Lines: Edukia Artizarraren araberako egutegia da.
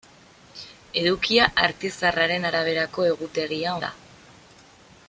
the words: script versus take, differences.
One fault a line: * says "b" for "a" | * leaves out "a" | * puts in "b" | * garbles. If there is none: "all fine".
all fine